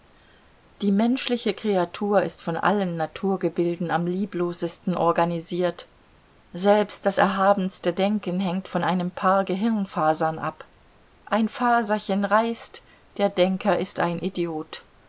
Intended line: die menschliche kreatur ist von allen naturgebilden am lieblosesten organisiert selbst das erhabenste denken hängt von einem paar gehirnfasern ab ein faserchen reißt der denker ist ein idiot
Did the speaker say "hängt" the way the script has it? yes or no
yes